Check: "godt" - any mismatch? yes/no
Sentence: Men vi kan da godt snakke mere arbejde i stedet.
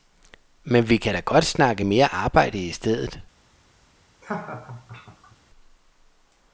no